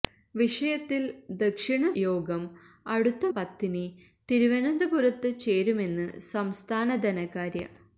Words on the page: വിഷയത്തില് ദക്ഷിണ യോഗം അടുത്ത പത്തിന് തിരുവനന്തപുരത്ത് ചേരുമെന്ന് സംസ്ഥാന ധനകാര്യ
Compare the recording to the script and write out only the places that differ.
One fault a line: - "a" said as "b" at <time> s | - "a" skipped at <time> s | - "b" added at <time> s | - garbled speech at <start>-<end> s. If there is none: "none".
none